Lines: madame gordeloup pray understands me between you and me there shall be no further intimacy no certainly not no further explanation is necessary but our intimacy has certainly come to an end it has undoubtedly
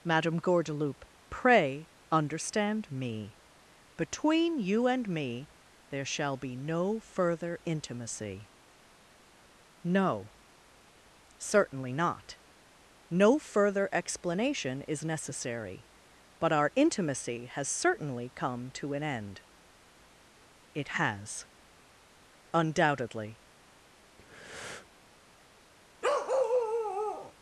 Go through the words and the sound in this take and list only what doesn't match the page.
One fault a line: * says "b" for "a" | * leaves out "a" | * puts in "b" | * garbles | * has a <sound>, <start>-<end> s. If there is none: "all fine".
* says "understand" for "understands"
* has a breath, 24.2-24.9 s
* has a bark, 26.0-27.3 s